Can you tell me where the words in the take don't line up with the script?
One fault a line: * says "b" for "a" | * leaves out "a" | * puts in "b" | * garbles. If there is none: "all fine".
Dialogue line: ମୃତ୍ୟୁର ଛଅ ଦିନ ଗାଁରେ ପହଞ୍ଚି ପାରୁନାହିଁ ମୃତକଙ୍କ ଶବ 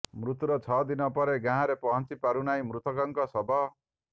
* puts in "ପରେ"